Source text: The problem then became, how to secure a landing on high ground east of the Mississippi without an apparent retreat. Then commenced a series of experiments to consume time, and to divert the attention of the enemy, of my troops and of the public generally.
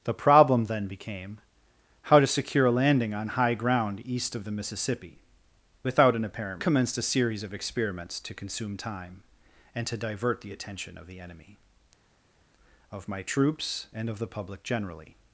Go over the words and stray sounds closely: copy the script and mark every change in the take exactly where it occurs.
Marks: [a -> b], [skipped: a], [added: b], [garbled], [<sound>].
The problem then became, how to secure a landing on high ground east of the Mississippi without an apparent [skipped: retreat. Then] commenced a series of experiments to consume time, and to divert the attention of the enemy, of my troops and of the public generally.